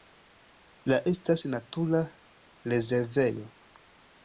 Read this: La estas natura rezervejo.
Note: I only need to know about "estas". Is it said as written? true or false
true